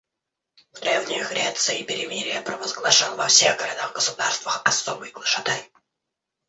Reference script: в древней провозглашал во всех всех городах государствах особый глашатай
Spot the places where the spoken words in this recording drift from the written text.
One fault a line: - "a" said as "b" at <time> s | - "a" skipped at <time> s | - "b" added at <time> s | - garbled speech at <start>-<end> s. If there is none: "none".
- "греции перемирие" added at 1.2 s
- "всех" skipped at 3.6 s